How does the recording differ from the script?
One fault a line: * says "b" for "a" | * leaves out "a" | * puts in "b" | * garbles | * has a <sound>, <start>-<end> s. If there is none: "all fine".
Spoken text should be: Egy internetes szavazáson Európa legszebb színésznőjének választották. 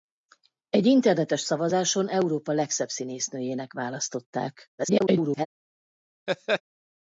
* garbles
* has a laugh, 6.3-6.6 s